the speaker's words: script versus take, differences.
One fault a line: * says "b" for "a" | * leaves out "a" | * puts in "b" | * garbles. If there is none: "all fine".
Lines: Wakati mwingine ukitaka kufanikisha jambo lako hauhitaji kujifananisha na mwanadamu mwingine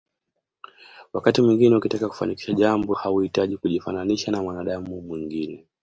* leaves out "lako"